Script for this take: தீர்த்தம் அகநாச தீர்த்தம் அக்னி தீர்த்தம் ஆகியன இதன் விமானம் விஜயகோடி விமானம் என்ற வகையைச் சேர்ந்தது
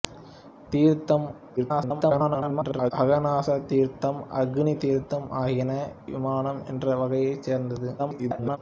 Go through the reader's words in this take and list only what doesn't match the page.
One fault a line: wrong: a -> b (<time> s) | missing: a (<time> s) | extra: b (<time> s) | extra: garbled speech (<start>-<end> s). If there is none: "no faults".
extra: garbled speech (1.6-2.9 s)
missing: இதன் விமானம் விஜயகோடி (5.7 s)
extra: garbled speech (8.0-8.6 s)